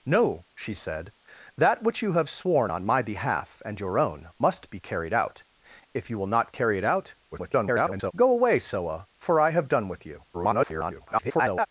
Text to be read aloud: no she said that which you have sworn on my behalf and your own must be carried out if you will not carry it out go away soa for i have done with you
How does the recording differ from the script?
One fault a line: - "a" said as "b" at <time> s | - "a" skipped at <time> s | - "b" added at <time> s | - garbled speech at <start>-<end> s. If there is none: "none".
- garbled speech at 7.3-8.1 s
- garbled speech at 10.3-11.7 s